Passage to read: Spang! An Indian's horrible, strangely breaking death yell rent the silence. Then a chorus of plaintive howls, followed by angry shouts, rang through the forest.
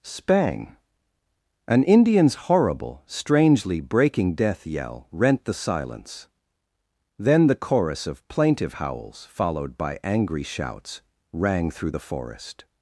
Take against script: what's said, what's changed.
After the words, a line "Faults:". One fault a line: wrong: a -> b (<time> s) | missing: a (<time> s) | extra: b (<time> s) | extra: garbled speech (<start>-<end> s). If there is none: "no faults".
Spang! An Indian's horrible, strangely breaking death yell rent the silence. Then the chorus of plaintive howls, followed by angry shouts, rang through the forest.
Faults:
wrong: a -> the (7.5 s)